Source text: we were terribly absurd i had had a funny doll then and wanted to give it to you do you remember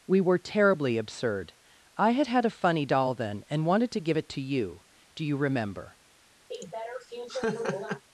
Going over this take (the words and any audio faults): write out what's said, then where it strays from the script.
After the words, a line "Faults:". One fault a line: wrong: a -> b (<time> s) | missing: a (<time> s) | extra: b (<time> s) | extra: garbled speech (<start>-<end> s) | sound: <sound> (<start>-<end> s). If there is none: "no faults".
we were terribly absurd i had had a funny doll then and wanted to give it to you do you remember
Faults:
sound: laugh (6.5-8.0 s)